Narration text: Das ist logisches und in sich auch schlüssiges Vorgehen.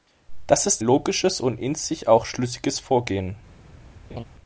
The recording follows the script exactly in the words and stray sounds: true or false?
false